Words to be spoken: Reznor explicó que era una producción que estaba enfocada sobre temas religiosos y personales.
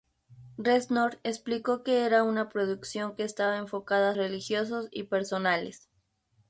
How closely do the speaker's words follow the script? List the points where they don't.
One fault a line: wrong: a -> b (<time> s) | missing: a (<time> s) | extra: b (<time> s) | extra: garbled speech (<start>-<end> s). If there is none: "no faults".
missing: sobre temas (4.2 s)